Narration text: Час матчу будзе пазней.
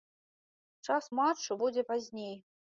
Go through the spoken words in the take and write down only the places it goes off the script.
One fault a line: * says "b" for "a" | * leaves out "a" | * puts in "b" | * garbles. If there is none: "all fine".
all fine